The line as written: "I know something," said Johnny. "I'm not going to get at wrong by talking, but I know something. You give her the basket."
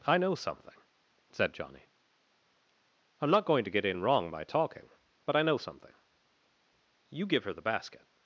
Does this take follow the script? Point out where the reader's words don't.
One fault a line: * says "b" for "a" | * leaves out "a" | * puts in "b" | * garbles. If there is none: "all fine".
* says "in" for "at"